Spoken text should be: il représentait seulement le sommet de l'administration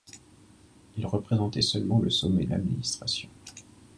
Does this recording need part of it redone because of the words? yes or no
yes